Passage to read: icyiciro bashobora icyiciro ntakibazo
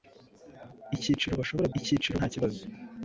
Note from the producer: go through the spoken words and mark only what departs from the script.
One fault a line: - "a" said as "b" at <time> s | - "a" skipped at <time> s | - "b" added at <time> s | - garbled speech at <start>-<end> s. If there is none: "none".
none